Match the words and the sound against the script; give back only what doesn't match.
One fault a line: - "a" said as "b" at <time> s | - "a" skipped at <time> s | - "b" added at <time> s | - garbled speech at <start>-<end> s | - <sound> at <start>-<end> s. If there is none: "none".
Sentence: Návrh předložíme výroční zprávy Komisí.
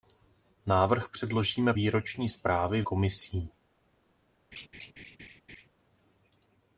- laugh at 4.5-5.7 s